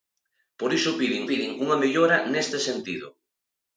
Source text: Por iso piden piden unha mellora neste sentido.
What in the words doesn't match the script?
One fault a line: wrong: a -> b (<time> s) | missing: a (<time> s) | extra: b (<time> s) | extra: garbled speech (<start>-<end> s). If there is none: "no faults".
no faults